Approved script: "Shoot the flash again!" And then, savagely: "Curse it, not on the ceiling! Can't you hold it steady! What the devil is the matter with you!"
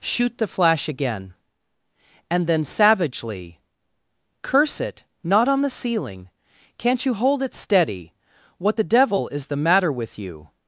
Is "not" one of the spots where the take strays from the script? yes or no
no